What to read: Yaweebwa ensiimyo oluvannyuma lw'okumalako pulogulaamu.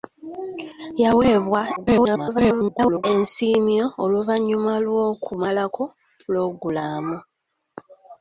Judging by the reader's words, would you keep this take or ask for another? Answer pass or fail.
fail